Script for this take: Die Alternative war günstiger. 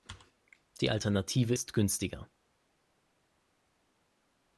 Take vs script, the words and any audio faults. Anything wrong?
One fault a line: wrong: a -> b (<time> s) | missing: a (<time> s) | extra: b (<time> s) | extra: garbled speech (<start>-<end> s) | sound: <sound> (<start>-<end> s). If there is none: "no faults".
wrong: war -> ist (1.5 s)